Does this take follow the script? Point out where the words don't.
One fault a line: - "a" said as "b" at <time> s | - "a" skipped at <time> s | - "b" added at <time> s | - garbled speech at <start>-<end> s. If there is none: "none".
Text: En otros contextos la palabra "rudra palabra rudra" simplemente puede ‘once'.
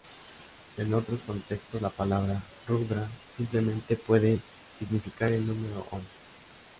- "palabra rudra simplemente puede" said as "simplemente puede significar el número" at 3.3 s